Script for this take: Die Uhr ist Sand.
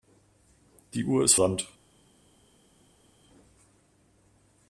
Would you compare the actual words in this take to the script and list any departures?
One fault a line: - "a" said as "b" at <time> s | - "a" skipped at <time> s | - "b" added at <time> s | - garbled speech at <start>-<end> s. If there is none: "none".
none